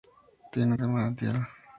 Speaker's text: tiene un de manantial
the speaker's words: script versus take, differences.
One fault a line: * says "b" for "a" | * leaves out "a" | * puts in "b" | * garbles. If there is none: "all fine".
all fine